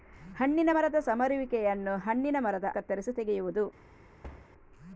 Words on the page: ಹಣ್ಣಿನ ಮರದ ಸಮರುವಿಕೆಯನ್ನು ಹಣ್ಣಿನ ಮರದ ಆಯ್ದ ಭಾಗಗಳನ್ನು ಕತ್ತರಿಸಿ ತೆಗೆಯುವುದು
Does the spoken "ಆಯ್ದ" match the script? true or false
false